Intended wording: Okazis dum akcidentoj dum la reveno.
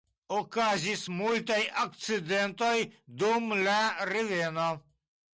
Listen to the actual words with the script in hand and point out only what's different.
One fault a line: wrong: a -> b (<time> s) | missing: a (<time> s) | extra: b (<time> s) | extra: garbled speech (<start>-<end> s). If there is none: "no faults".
wrong: dum -> multaj (1.1 s)